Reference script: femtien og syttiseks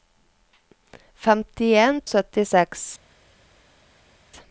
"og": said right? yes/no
yes